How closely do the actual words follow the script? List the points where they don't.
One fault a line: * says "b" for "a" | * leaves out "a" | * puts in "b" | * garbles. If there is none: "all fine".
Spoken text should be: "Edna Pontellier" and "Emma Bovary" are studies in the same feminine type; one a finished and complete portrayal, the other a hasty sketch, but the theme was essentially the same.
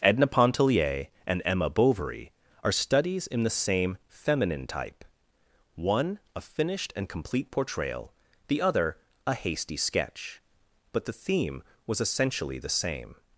all fine